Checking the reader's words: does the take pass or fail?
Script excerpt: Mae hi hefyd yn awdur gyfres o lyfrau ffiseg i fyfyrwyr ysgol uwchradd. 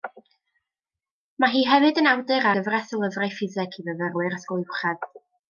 pass